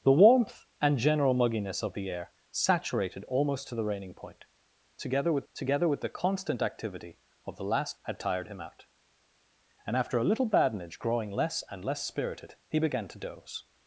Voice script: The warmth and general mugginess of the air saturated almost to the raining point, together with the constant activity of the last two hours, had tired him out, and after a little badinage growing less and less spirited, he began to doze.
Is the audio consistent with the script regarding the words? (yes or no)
no